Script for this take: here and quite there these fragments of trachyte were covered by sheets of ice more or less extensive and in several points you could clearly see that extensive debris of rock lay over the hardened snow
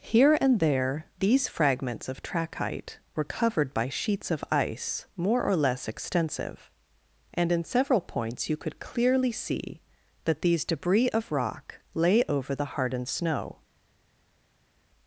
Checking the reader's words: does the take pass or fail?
fail